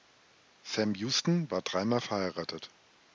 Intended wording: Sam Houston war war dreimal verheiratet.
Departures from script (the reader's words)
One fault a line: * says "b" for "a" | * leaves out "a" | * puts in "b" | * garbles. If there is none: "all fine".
* leaves out "war"